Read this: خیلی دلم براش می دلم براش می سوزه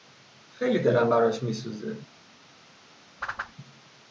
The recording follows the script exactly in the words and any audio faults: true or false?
false